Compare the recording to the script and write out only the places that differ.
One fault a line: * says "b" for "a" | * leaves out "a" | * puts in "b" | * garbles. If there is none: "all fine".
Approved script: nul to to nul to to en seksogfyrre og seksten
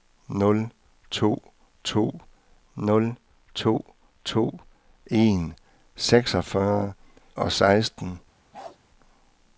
all fine